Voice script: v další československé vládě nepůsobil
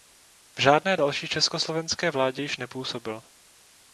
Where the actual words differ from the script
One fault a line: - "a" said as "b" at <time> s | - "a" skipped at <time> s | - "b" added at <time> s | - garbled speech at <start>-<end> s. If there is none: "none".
- "žádné" added at 0.6 s
- "již" added at 2.4 s